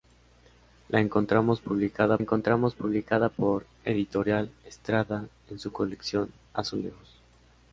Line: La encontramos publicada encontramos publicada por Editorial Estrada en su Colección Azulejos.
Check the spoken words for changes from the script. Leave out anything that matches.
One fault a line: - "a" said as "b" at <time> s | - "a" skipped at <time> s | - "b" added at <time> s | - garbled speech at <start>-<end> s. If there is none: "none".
none